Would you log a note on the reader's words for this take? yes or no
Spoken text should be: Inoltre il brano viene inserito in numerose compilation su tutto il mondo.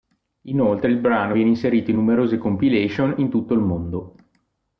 yes